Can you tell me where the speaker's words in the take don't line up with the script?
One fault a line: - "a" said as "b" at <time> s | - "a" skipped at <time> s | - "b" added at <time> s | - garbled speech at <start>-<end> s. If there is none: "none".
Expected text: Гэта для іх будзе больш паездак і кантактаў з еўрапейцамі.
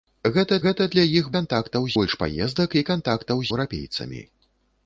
- "гэта" added at 0.7 s
- "будзе" said as "кантактаў" at 1.4 s
- "з" skipped at 3.5 s